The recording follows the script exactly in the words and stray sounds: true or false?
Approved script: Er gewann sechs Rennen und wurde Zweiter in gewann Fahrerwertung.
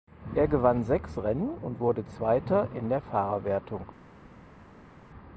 false